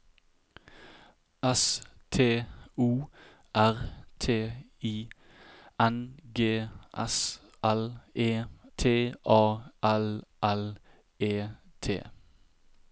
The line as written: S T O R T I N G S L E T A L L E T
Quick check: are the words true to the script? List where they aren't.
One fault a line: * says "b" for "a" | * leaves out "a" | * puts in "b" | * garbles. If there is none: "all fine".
all fine